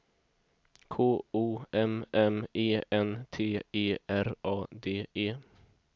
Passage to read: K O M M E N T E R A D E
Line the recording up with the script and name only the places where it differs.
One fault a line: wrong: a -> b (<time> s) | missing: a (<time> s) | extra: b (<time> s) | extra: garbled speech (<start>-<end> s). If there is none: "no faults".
no faults